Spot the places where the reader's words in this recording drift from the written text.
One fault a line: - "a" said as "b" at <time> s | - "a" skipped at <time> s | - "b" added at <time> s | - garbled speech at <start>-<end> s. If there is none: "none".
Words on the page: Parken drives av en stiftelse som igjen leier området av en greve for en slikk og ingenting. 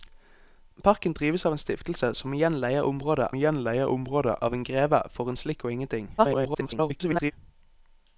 - "igjen leier området" added at 3.3 s
- garbled speech at 6.2-7.3 s